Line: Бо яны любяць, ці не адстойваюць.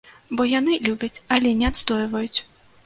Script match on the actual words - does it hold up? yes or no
no